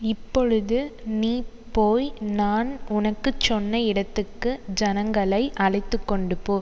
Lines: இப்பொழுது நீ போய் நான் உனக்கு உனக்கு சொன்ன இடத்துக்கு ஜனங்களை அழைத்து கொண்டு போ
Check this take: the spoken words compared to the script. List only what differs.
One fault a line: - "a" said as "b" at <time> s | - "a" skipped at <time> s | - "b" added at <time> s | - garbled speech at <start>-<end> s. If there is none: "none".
- "உனக்கு" skipped at 3.3 s